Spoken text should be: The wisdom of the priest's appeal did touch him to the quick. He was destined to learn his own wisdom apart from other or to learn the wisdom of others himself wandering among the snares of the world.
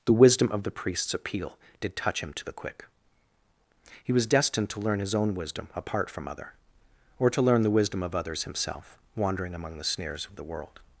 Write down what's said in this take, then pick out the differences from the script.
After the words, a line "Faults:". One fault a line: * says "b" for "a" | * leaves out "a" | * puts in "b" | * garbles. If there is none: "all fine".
The wisdom of the priest's appeal did touch him to the quick. He was destined to learn his own wisdom apart from other or to learn the wisdom of others himself wandering among the snares of the world.
Faults:
all fine